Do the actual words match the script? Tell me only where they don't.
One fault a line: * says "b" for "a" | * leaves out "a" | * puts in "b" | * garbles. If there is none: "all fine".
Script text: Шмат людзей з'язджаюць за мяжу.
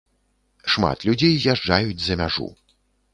all fine